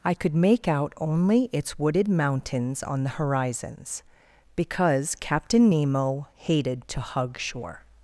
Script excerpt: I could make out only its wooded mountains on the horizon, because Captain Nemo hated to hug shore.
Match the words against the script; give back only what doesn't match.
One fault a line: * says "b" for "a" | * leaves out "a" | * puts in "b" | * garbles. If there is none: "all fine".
* says "horizons" for "horizon"